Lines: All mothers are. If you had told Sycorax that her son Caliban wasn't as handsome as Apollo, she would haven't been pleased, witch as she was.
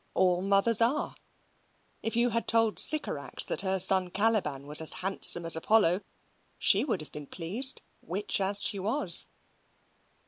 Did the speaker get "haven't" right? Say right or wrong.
wrong